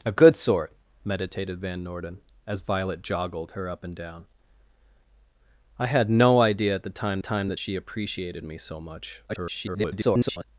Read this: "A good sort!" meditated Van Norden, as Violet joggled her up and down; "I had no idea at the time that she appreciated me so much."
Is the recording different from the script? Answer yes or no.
yes